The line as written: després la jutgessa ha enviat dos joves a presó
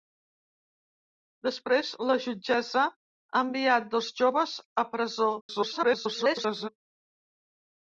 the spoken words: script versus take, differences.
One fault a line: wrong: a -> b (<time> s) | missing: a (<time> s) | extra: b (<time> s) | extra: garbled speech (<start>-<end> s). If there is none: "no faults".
extra: garbled speech (5.4-6.7 s)